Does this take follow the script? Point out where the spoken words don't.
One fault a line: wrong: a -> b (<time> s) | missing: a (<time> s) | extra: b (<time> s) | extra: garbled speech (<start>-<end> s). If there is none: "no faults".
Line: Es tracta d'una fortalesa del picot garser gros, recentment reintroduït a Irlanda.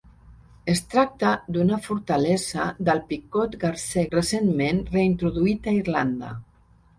missing: gros (4.1 s)